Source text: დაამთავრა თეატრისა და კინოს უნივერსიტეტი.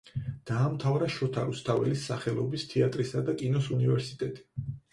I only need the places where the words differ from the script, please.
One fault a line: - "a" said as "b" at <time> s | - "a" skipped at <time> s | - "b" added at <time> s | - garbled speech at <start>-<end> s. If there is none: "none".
- "შოთა რუსთაველის სახელობის" added at 1.1 s